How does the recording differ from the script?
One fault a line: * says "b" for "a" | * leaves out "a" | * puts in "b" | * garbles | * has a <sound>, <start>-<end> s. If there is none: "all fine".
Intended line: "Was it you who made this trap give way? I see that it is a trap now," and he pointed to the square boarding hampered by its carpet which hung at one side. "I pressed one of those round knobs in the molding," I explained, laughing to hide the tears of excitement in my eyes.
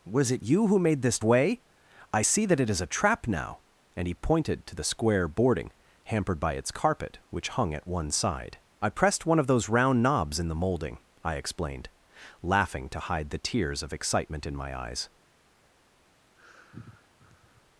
* leaves out "trap give"
* has a sigh, 16.4-17.6 s